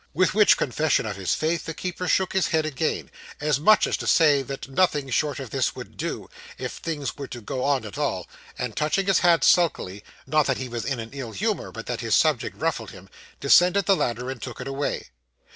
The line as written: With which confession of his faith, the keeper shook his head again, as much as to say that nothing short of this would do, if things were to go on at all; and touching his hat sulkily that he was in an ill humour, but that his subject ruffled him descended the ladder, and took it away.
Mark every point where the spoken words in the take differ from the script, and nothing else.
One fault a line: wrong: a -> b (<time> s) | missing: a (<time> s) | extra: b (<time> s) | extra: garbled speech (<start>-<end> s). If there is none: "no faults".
extra: not (10.2 s)